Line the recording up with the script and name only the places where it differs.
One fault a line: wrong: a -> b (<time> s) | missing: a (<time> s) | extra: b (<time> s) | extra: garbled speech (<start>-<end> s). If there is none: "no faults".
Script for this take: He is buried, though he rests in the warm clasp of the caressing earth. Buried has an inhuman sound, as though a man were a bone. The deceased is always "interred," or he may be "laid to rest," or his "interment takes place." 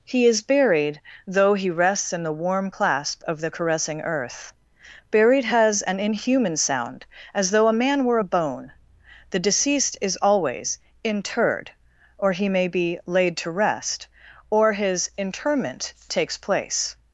no faults